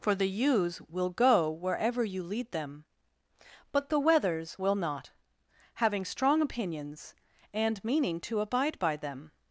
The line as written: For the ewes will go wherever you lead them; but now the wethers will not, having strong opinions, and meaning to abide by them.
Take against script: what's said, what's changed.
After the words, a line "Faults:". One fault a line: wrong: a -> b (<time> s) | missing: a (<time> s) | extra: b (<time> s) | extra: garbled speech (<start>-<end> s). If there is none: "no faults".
For the ewes will go wherever you lead them; but the wethers will not, having strong opinions, and meaning to abide by them.
Faults:
missing: now (3.9 s)